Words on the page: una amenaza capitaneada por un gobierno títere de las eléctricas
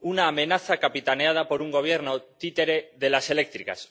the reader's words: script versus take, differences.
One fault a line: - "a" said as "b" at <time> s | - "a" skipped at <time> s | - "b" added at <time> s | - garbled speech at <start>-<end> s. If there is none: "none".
none